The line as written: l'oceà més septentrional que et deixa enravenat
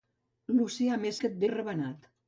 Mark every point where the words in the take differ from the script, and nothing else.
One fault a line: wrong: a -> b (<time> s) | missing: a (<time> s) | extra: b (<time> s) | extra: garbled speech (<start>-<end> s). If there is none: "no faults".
missing: septentrional (1.2 s)
missing: deixa (1.4 s)